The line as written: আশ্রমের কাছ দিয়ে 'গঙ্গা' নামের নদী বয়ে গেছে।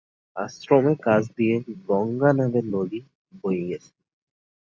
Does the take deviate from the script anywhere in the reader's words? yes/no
no